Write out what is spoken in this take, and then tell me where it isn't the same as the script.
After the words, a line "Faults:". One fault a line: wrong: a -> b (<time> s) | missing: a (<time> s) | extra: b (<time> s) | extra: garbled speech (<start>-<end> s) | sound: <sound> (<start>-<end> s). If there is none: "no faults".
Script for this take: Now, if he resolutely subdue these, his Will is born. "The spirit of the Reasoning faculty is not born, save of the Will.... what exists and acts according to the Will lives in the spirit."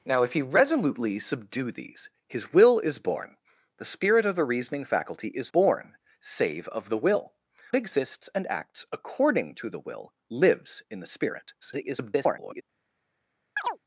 Now, if he resolutely subdue these, his Will is born. "The spirit of the Reasoning faculty is born, save of the Will.... exists and acts according to the Will lives in the spirit." [garbled]
Faults:
missing: not (5.5 s)
missing: what (7.3 s)
extra: garbled speech (11.6-12.6 s)
sound: chirp (13.6-13.8 s)